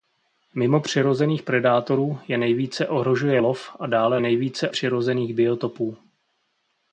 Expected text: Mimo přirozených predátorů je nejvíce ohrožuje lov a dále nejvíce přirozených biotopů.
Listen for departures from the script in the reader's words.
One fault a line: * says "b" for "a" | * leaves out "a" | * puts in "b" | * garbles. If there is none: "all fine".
all fine